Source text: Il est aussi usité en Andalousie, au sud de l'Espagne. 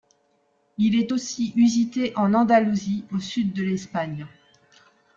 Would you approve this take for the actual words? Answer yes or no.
yes